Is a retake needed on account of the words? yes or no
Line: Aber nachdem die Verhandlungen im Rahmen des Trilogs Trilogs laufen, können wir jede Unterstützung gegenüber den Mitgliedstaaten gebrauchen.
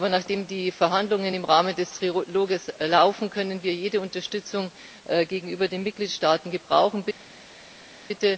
yes